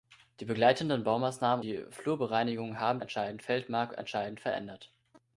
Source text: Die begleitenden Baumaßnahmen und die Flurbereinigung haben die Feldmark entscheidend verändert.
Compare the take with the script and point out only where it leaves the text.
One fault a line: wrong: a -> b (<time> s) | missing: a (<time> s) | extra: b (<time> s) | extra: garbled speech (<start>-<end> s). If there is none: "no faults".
missing: und (1.6 s)
wrong: die -> entscheidend (3.0 s)